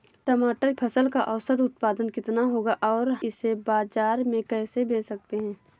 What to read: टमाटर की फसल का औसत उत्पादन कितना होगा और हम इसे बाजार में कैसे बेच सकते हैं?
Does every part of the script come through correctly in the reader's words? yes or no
no